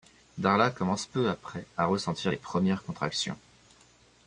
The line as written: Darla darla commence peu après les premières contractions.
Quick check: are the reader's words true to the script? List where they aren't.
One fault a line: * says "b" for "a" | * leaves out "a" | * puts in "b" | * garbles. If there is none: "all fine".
* leaves out "darla"
* puts in "à ressentir"